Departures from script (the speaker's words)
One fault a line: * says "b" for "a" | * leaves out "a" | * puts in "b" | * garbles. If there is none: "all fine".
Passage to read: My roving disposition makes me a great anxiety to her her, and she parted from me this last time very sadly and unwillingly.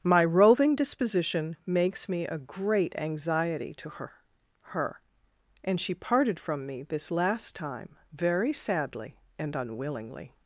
all fine